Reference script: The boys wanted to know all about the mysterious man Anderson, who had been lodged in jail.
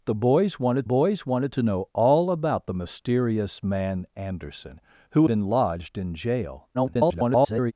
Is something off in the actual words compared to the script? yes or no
yes